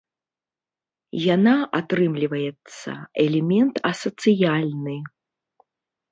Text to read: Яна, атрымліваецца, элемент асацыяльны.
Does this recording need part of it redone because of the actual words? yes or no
no